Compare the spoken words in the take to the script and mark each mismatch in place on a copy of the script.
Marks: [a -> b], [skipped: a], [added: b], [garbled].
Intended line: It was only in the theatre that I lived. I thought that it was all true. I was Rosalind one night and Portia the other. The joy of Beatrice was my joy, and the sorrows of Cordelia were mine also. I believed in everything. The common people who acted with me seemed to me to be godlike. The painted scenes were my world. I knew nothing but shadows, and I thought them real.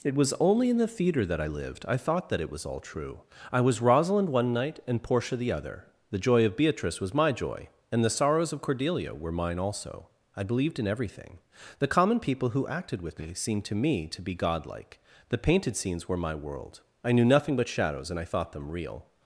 It was only in the theatre that I lived. I thought that it was all true. I was Rosalind one night and Portia the other. The joy of Beatrice was my joy, and the sorrows of Cordelia were mine also. I believed in everything. The common people who acted with me seemed to me to be godlike. The painted scenes were my world. I knew nothing but shadows, and I thought them real.